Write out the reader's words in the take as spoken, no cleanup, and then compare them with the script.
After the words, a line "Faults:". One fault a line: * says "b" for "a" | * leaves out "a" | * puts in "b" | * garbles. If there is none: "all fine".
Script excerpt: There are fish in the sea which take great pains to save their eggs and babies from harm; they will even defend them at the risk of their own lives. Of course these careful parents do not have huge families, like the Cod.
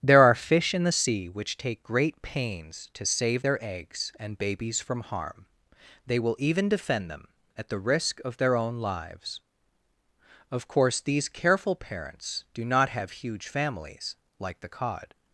There are fish in the sea which take great pains to save their eggs and babies from harm; they will even defend them at the risk of their own lives. Of course these careful parents do not have huge families, like the Cod.
Faults:
all fine